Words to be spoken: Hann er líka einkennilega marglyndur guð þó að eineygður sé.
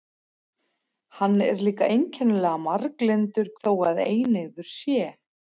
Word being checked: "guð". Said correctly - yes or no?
no